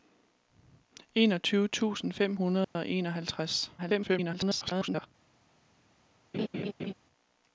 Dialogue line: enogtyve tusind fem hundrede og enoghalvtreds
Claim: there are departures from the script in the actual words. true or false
true